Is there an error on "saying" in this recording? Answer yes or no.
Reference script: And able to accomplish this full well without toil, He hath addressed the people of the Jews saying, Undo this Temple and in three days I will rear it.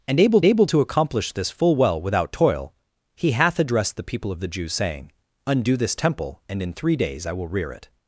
no